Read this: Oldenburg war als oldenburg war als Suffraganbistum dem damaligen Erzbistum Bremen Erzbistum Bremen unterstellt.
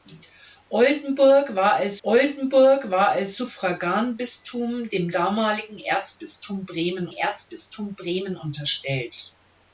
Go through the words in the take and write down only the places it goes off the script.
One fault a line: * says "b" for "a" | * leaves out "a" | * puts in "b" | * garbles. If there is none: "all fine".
all fine